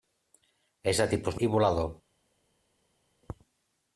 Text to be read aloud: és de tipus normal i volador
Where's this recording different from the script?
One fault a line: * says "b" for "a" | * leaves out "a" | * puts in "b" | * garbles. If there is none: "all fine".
* leaves out "normal"